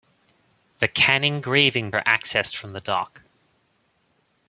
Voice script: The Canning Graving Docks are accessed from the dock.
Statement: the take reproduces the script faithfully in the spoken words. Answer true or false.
false